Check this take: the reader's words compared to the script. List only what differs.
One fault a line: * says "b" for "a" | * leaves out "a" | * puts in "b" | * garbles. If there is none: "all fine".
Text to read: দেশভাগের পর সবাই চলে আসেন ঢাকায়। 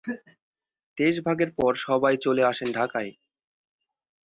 all fine